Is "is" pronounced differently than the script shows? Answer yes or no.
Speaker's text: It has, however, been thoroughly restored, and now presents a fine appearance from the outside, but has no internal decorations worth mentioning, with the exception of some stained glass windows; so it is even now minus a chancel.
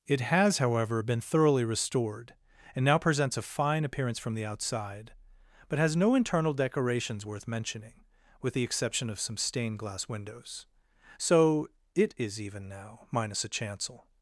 no